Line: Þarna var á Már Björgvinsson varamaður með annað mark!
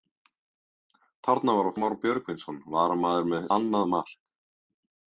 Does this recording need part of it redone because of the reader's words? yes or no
no